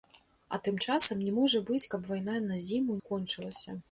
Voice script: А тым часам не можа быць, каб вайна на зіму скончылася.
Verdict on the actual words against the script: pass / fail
pass